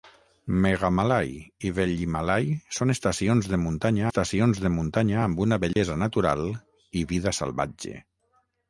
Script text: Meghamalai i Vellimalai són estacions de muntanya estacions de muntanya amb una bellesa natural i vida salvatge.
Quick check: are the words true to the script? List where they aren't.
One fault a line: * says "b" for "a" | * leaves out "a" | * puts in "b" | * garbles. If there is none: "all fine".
all fine